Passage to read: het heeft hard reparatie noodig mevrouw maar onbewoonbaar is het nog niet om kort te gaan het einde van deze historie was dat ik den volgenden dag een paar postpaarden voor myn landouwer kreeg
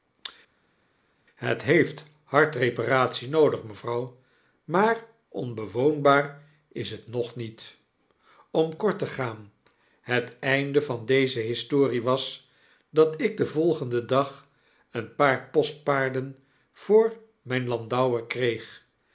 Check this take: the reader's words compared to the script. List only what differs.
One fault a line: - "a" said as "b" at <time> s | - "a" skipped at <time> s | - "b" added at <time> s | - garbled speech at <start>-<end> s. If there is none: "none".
none